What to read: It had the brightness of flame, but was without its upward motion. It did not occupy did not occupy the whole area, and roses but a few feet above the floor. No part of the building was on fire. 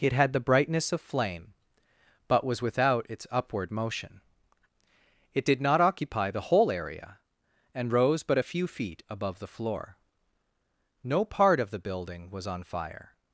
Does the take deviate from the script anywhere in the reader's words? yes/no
yes